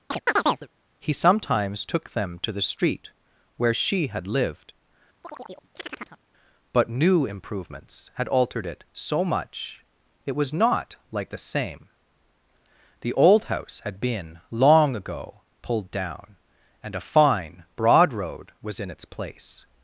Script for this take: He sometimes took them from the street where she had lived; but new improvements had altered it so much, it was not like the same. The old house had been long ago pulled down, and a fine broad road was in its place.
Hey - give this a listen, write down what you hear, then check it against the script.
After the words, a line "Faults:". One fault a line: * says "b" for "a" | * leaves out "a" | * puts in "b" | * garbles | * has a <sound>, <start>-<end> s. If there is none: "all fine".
He sometimes took them to the street where she had lived; but new improvements had altered it so much, it was not like the same. The old house had been long ago pulled down, and a fine broad road was in its place.
Faults:
* has a chirp, 0.1-0.7 s
* says "to" for "from"
* has a chirp, 5.2-6.2 s